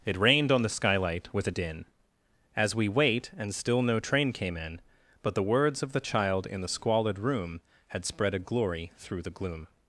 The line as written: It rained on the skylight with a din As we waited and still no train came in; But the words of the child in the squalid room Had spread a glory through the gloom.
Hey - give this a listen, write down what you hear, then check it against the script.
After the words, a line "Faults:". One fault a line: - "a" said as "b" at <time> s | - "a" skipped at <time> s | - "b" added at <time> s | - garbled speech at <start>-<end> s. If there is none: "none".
It rained on the skylight with a din As we wait and still no train came in; But the words of the child in the squalid room Had spread a glory through the gloom.
Faults:
- "waited" said as "wait" at 2.9 s